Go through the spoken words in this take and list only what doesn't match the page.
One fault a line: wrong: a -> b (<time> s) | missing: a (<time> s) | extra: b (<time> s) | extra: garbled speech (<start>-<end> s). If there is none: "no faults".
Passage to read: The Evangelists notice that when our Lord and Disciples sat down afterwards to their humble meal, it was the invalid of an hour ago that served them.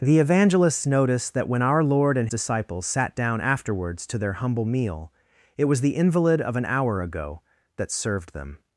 no faults